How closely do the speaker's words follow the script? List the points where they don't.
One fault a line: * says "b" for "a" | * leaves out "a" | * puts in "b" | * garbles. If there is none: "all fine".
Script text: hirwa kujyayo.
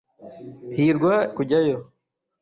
all fine